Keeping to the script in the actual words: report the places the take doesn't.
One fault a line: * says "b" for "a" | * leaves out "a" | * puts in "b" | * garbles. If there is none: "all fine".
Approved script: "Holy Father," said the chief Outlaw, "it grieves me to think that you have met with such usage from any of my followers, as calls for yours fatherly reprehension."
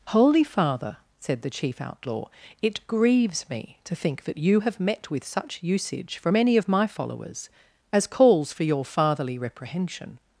* says "your" for "yours"